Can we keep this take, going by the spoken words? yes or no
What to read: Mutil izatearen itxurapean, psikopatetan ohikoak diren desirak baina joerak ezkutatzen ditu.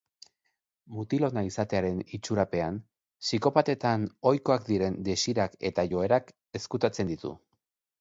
no